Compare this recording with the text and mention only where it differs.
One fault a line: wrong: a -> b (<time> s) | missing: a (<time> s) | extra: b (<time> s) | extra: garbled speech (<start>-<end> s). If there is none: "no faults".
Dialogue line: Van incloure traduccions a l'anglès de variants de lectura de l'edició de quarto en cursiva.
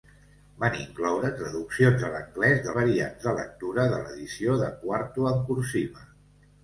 no faults